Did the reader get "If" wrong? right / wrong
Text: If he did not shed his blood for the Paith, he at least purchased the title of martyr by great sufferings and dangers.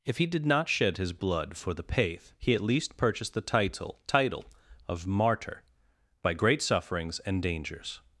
right